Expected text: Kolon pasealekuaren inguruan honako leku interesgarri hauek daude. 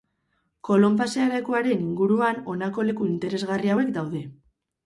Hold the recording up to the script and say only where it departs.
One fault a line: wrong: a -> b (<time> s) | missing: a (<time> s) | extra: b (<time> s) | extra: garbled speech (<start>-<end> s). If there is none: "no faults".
no faults